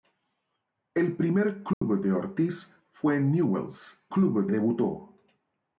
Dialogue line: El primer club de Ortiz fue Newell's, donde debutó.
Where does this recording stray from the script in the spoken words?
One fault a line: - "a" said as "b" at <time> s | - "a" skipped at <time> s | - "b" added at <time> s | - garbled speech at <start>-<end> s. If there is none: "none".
- "donde" said as "club" at 4.1 s